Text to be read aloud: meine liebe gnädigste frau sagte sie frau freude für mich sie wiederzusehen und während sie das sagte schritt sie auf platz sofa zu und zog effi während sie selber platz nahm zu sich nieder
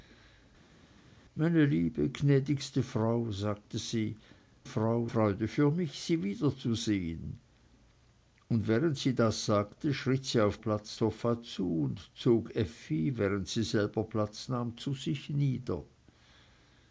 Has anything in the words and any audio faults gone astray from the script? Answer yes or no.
no